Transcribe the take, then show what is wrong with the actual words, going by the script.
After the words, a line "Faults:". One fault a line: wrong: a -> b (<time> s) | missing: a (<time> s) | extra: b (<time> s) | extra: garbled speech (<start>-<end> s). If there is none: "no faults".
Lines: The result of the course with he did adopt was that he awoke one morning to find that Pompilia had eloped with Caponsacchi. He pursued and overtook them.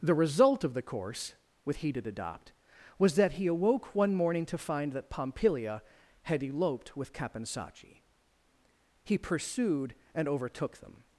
The result of the course with he did adopt was that he awoke one morning to find that Pompilia had eloped with Caponsacchi. He pursued and overtook them.
Faults:
no faults